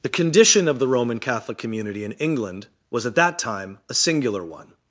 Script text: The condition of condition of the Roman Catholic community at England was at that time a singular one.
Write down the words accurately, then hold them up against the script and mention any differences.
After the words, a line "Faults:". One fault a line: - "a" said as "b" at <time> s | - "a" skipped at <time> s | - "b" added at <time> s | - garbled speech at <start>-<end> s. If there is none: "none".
The condition of the Roman Catholic community in England was at that time a singular one.
Faults:
- "condition of" skipped at 0.8 s
- "at" said as "in" at 2.0 s